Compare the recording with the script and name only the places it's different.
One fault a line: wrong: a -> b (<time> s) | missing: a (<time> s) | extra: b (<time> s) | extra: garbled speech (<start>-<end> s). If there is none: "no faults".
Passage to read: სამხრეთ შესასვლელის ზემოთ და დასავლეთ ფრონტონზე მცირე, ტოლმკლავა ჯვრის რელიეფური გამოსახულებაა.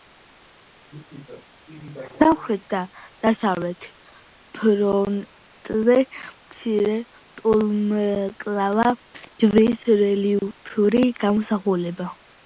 missing: შესასვლელის ზემოთ (2.6 s)